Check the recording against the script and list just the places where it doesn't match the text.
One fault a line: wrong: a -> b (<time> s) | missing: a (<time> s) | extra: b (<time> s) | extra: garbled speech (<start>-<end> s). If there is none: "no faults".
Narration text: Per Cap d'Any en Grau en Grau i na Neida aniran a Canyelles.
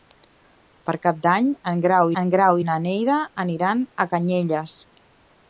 no faults